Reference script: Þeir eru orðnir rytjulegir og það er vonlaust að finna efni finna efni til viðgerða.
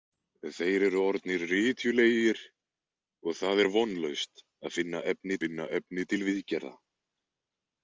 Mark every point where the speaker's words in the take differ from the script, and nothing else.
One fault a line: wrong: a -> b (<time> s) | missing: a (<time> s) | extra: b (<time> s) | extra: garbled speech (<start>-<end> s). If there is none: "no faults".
no faults